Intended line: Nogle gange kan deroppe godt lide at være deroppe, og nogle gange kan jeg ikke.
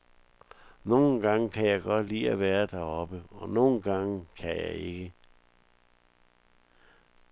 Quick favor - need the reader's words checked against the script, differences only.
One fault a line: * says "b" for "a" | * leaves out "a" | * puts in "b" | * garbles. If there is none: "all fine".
* says "jeg" for "deroppe"